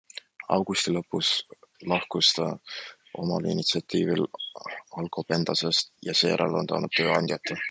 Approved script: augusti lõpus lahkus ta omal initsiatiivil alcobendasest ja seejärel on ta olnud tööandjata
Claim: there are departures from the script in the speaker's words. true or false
false